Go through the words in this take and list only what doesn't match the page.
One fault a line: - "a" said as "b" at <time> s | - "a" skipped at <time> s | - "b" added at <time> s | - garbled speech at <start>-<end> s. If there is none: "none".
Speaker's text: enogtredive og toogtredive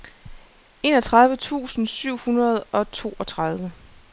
- "tusind syv hundrede" added at 1.3 s